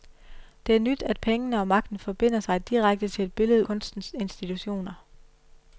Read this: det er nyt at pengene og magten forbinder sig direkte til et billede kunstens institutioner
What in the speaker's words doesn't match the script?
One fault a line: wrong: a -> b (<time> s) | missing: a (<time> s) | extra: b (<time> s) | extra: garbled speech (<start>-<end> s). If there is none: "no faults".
no faults